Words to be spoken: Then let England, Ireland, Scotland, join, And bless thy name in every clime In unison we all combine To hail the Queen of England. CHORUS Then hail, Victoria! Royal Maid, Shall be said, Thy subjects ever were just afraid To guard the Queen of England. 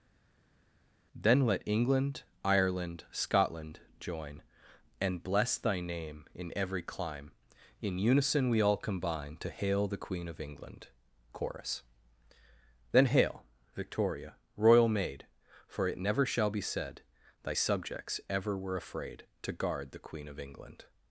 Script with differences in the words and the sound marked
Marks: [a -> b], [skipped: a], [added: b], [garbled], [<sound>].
Then let England, Ireland, Scotland, join, And bless thy name in every clime In unison we all combine To hail the Queen of England. CHORUS Then hail, Victoria! Royal Maid, [added: For it never] Shall be said, Thy subjects ever were [skipped: just] afraid To guard the Queen of England.